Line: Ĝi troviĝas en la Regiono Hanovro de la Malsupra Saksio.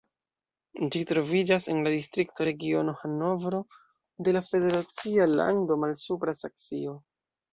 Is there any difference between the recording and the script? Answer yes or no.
yes